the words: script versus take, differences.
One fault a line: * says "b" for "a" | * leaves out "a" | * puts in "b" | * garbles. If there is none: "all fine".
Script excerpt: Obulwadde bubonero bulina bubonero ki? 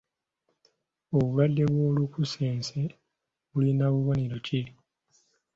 * says "bw'olukusense" for "bubonero"